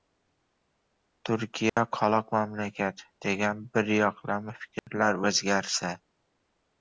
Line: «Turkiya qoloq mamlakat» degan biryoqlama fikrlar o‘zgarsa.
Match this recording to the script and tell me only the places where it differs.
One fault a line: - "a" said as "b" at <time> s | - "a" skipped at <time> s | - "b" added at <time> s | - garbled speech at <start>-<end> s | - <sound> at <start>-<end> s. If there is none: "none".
- dropout at 1.7-1.8 s
- dropout at 4.8-4.9 s